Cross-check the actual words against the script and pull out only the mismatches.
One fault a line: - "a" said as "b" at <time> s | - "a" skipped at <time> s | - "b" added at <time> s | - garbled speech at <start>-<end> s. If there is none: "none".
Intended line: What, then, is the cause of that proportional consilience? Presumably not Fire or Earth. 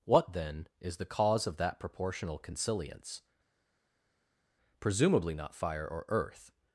none